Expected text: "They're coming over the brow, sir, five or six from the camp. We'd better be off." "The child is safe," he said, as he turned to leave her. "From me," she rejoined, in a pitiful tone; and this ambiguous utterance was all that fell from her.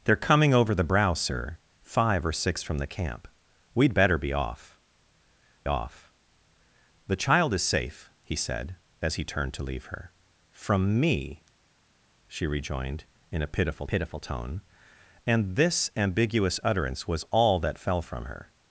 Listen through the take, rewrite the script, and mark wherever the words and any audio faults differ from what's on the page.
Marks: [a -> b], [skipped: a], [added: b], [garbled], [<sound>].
"They're coming over the brow, sir, five or six from the camp. We'd better be off." [added: off] "The child is safe," he said, as he turned to leave her. "From me," she rejoined, in a pitiful [added: pitiful] tone; and this ambiguous utterance was all that fell from her.